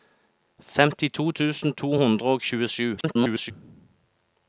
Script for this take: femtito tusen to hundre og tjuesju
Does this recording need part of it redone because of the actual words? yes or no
yes